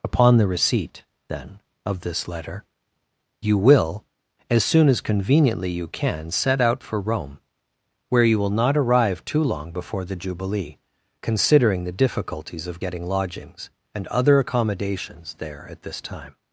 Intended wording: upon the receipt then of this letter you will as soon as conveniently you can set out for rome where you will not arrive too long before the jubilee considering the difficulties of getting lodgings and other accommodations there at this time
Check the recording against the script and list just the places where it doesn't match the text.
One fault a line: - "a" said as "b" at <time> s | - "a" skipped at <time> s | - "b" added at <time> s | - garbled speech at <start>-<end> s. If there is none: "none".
none